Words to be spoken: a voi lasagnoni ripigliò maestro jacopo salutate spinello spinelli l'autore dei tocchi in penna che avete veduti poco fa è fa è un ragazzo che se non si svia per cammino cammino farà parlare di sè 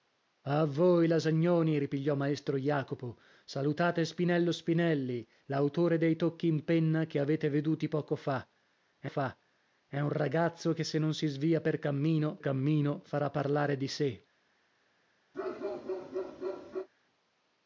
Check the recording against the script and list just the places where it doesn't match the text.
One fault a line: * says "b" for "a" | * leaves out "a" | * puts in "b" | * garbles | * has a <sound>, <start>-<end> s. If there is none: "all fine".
* has a bark, 15.3-16.9 s